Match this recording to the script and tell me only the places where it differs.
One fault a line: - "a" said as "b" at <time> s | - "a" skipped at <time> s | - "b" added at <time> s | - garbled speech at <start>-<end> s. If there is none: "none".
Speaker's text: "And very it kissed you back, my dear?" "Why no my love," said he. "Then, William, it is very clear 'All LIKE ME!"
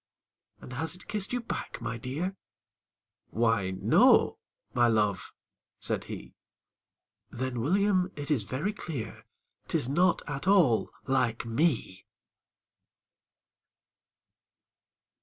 - "very" said as "has" at 0.7 s
- "Tis not at" added at 9.7 s